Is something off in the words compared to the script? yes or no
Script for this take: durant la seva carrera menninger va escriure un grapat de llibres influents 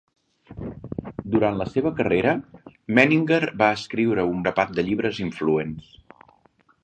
no